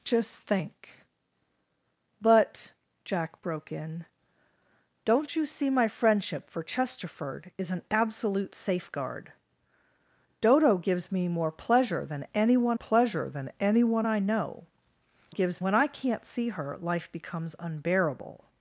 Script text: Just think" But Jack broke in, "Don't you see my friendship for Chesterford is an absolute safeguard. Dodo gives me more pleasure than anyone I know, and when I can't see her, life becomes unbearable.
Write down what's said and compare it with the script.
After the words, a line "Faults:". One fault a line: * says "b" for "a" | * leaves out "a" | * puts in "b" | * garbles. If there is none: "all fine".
Just think" But Jack broke in, "Don't you see my friendship for Chesterford is an absolute safeguard. Dodo gives me more pleasure than anyone pleasure than anyone I know, gives when I can't see her, life becomes unbearable.
Faults:
* puts in "pleasure than anyone"
* says "gives" for "and"